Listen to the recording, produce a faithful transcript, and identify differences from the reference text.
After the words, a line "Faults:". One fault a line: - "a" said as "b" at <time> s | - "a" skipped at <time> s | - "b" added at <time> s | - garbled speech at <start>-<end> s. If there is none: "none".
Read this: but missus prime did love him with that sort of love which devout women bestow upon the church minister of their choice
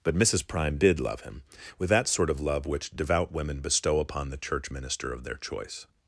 but missus prime did love him with that sort of love which devout women bestow upon the church minister of their choice
Faults:
none